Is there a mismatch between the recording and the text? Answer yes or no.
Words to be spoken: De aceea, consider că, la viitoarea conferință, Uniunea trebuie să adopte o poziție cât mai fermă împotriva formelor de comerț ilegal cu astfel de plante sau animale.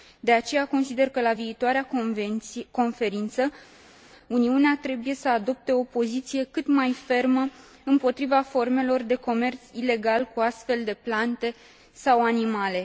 no